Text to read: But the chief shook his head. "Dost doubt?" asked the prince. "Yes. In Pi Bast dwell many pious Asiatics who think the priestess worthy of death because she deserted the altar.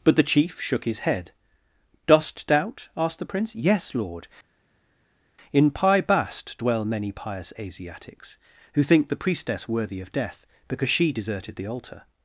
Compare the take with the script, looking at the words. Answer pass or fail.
fail